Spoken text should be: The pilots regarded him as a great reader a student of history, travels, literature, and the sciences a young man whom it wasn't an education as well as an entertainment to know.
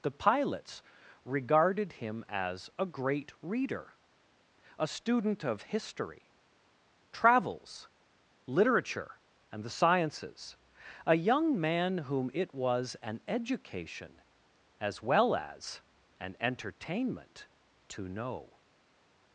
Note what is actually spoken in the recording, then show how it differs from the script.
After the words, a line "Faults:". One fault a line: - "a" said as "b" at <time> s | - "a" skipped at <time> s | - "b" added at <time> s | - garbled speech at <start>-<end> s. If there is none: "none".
The pilots regarded him as a great reader a student of history, travels, literature, and the sciences a young man whom it was an education as well as an entertainment to know.
Faults:
- "wasn't" said as "was" at 12.5 s